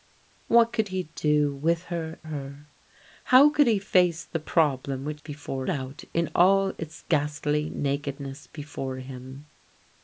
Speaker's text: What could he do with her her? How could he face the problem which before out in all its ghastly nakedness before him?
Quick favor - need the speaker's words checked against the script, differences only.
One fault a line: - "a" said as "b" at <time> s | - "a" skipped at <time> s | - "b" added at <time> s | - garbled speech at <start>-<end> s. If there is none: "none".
none